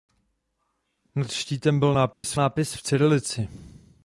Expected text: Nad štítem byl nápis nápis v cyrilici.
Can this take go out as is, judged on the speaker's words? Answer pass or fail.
pass